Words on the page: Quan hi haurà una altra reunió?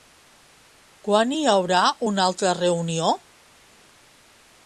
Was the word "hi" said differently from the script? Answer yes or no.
no